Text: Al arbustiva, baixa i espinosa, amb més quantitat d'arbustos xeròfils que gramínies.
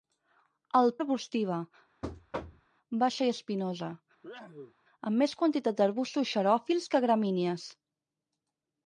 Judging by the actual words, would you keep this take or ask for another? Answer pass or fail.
pass